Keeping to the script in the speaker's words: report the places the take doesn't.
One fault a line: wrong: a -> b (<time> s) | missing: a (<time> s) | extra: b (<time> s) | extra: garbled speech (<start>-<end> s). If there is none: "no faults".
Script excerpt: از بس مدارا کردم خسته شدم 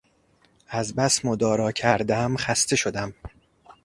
no faults